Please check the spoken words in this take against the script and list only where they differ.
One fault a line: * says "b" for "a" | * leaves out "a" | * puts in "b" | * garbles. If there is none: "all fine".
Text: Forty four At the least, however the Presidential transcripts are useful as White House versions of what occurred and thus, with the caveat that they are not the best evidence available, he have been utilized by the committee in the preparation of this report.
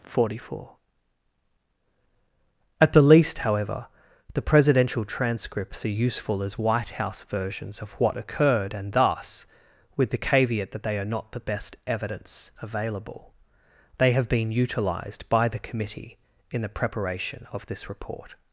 * says "they" for "he"